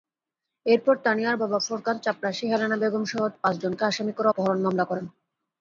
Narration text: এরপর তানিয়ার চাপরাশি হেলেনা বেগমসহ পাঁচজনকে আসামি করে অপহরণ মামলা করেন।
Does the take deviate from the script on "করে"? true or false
false